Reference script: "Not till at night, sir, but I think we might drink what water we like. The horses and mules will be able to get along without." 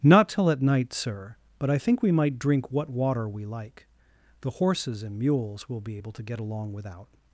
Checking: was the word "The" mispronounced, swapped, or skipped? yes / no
no